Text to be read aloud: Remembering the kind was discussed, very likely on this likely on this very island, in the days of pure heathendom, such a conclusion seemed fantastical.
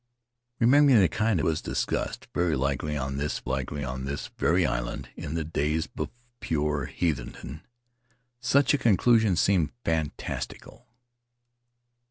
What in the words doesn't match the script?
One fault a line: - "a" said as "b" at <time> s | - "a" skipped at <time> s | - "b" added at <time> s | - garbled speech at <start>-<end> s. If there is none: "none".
none